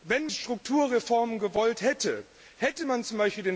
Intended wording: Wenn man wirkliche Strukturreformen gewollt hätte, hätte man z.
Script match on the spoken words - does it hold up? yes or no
no